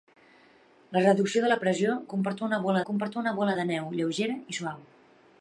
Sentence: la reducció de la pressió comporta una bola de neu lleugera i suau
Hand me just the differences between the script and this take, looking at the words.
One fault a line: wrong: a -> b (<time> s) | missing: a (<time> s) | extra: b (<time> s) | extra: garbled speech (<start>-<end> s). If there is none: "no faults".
extra: comporta una bola (2.9 s)